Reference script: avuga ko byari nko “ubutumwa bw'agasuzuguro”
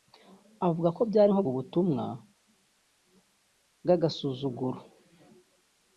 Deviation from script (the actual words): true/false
false